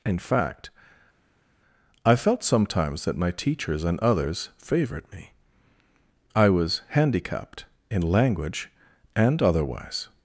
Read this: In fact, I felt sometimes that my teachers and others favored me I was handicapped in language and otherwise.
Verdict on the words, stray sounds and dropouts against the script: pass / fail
pass